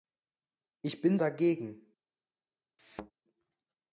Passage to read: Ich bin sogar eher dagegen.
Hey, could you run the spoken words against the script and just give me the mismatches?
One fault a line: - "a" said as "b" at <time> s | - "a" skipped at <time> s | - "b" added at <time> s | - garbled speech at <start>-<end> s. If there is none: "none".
- "sogar eher" skipped at 1.2 s